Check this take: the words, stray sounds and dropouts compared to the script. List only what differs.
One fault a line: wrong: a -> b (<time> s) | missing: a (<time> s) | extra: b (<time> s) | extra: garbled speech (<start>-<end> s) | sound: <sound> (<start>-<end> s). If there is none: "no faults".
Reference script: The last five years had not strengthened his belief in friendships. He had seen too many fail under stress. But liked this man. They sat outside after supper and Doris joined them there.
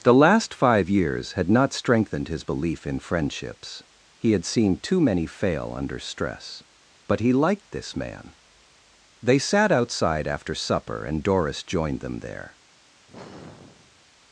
extra: he (7.2 s)
sound: sigh (13.1-14.1 s)